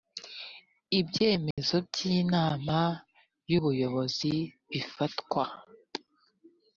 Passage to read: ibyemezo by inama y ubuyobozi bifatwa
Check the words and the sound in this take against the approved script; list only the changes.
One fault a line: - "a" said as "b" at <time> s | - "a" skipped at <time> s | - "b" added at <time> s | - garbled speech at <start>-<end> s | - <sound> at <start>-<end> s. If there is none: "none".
- dropout at 1.5-1.6 s